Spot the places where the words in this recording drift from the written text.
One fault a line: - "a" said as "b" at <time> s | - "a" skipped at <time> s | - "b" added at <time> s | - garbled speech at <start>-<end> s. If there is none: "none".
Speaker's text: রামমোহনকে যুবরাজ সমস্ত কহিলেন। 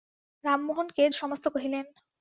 - "যুবরাজ" skipped at 1.0 s